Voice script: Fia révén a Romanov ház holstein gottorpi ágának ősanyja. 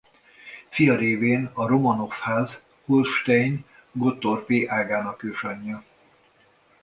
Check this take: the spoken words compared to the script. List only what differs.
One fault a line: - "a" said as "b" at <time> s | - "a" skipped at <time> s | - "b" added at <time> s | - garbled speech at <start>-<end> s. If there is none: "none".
none